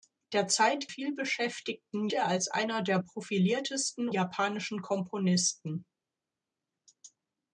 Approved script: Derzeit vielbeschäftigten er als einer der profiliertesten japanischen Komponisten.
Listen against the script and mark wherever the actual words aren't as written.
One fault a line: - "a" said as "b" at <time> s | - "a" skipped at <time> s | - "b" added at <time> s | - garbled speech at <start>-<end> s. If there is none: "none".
none